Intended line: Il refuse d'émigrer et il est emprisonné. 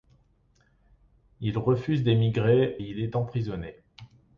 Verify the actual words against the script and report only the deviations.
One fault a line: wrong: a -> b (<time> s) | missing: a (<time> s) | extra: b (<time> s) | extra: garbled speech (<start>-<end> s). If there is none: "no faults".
missing: et (2.8 s)